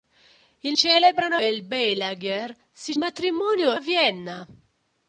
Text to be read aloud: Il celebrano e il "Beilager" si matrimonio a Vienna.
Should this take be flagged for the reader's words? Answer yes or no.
no